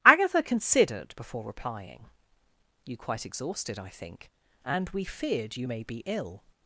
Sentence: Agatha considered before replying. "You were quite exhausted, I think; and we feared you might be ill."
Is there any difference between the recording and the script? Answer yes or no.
yes